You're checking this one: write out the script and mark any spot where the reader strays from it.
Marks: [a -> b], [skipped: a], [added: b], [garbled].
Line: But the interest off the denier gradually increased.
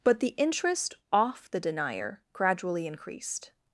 But the interest off the denier gradually increased.